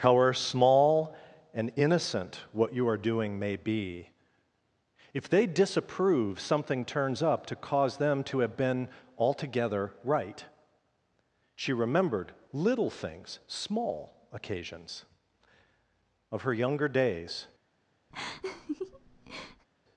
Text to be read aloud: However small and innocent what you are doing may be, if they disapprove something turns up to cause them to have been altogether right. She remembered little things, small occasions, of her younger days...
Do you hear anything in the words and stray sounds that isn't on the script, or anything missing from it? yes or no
yes